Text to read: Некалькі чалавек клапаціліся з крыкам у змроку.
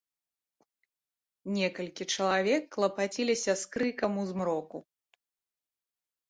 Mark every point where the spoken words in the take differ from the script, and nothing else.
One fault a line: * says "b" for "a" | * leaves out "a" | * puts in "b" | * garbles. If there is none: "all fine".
all fine